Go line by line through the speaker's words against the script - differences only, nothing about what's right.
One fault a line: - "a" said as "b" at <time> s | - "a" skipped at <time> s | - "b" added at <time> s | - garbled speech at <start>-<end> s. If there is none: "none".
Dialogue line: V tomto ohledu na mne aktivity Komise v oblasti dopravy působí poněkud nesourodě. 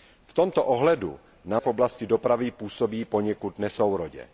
- "mne aktivity Komise" skipped at 1.6 s